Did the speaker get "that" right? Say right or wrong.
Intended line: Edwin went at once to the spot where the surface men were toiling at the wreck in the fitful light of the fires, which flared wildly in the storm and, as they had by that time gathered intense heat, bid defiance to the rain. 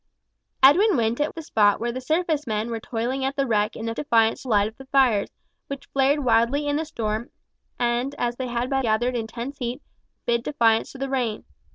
wrong